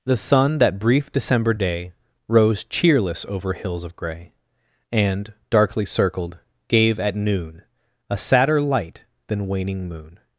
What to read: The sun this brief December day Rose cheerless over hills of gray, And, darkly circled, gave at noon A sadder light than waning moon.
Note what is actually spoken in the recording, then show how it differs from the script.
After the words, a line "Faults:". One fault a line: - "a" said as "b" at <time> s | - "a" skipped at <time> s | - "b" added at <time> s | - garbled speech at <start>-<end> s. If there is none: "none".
The sun that brief December day Rose cheerless over hills of gray, And, darkly circled, gave at noon A sadder light than waning moon.
Faults:
- "this" said as "that" at 0.6 s